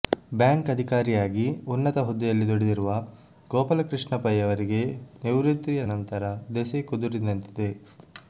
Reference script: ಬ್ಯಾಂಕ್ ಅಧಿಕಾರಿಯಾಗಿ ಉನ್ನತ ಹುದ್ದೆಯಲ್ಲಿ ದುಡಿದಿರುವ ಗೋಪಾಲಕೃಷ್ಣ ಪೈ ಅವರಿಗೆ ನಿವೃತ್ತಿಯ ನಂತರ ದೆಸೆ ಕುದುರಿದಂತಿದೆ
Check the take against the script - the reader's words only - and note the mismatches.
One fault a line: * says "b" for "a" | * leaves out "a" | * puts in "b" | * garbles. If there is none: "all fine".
all fine